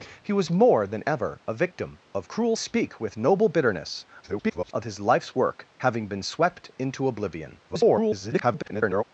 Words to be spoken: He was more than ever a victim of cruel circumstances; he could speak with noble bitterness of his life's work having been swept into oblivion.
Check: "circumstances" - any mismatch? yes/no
yes